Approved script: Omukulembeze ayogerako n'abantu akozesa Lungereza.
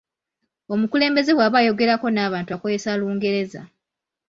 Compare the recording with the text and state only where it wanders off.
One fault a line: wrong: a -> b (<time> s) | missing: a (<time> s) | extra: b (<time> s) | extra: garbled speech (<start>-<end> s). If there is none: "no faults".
extra: bw'aba (1.3 s)